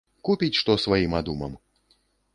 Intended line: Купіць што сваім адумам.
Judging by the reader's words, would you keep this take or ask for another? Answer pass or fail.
pass